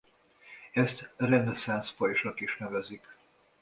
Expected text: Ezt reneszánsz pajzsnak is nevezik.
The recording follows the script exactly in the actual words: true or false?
true